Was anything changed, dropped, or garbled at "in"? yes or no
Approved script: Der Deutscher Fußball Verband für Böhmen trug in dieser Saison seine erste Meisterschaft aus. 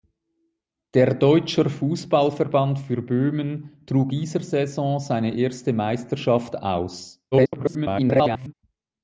yes